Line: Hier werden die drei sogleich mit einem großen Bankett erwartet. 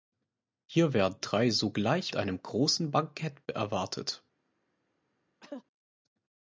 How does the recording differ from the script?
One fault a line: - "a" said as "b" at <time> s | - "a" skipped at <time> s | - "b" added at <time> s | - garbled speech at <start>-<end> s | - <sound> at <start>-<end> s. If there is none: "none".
- "die" skipped at 1.2 s
- "mit" skipped at 2.1 s
- cough at 5.4-5.6 s